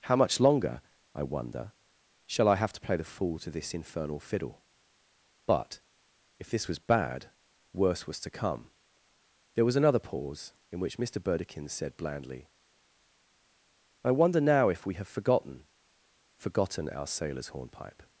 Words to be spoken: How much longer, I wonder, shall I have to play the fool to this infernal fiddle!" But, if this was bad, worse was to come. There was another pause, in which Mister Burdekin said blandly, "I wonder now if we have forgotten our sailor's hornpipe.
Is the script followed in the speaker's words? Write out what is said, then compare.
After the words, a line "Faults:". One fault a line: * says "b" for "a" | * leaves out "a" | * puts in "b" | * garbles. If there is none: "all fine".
How much longer, I wonder, shall I have to play the fool to this infernal fiddle!" But, if this was bad, worse was to come. There was another pause, in which Mister Burdekin said blandly, "I wonder now if we have forgotten forgotten our sailor's hornpipe.
Faults:
* puts in "forgotten"